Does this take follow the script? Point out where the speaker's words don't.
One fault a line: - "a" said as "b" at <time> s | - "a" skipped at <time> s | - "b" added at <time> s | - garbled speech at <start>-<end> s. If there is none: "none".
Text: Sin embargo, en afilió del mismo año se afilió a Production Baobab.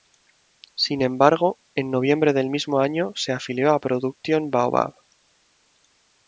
- "afilió" said as "noviembre" at 1.9 s